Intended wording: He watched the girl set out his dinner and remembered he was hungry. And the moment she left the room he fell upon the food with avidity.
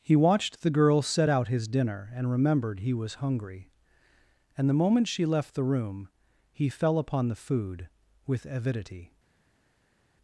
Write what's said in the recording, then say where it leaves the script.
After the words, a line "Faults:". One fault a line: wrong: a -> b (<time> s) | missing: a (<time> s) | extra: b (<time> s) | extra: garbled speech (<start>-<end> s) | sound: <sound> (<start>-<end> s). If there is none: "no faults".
He watched the girl set out his dinner and remembered he was hungry. And the moment she left the room he fell upon the food with avidity.
Faults:
no faults